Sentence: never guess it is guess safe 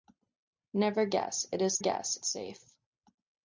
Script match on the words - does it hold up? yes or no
yes